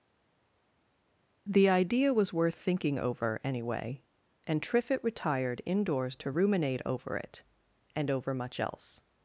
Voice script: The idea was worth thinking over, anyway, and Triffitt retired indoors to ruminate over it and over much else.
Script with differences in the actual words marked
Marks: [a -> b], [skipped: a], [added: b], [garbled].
The idea was worth thinking over, anyway, and Triffitt retired indoors to ruminate over it and over much else.